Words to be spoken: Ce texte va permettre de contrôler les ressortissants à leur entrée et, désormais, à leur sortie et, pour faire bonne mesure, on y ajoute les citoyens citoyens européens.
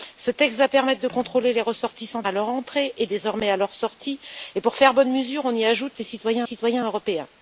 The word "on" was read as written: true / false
true